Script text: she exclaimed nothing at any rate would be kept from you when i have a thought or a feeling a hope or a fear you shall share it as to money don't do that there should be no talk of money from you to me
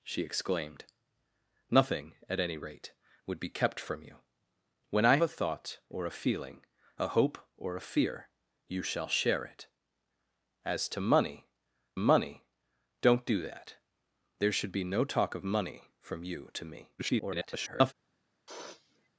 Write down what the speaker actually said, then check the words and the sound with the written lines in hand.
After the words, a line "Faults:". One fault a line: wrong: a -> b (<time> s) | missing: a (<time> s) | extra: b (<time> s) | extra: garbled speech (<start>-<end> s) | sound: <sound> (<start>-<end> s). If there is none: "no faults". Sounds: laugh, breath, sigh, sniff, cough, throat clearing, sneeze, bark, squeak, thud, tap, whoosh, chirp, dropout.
she exclaimed nothing at any rate would be kept from you when i a thought or a feeling a hope or a fear you shall share it as to money money don't do that there should be no talk of money from you to me [garbled]
Faults:
missing: have (5.2 s)
extra: money (12.0 s)
extra: garbled speech (17.0-17.9 s)
sound: sniff (18.5-19.1 s)